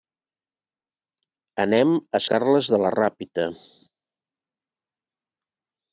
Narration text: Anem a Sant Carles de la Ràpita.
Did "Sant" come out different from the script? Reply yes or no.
yes